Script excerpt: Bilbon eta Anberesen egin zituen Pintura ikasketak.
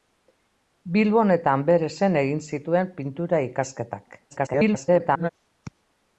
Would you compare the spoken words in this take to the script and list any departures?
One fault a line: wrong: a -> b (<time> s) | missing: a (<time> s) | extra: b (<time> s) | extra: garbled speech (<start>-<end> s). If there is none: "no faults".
extra: garbled speech (4.3-5.3 s)